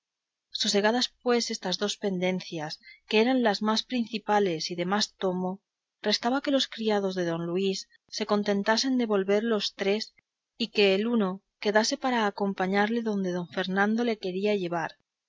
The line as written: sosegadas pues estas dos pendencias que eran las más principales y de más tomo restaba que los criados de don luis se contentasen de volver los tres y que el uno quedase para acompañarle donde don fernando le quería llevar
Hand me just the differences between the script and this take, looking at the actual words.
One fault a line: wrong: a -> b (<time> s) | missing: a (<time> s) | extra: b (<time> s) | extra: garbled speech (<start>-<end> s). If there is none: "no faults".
no faults